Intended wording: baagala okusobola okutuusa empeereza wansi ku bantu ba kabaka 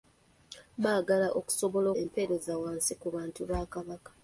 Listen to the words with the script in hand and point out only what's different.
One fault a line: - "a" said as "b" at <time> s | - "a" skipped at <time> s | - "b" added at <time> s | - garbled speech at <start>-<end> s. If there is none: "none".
- "okutuusa" skipped at 1.9 s